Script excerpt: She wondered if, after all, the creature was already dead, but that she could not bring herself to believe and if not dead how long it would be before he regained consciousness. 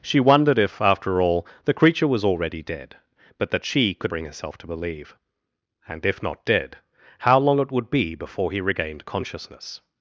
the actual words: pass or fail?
fail